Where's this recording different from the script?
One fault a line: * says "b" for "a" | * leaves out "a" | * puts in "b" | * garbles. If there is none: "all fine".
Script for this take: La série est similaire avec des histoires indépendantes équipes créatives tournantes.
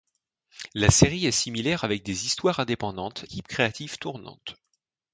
all fine